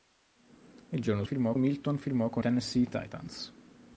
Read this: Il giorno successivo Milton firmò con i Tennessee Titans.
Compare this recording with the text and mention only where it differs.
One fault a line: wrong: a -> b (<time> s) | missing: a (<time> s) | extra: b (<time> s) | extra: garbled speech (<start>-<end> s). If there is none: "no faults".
wrong: successivo -> firmò (1.2 s)
missing: i (2.4 s)